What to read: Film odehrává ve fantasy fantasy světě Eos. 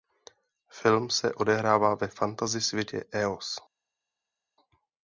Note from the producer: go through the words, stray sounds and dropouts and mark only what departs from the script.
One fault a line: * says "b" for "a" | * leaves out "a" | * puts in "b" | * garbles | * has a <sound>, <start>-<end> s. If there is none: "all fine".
* puts in "se"
* leaves out "fantasy"